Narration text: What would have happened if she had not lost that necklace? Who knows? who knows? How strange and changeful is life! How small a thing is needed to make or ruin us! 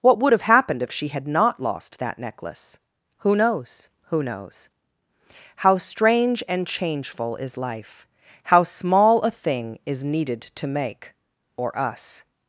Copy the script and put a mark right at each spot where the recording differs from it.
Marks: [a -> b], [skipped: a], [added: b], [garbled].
What would have happened if she had not lost that necklace? Who knows? who knows? How strange and changeful is life! How small a thing is needed to make or [skipped: ruin] us!